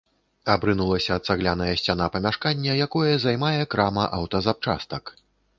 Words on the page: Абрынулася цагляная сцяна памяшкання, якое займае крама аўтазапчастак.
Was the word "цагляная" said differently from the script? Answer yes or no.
no